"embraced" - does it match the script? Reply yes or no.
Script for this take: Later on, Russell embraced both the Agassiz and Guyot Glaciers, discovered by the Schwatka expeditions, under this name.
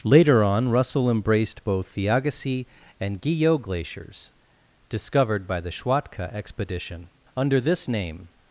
yes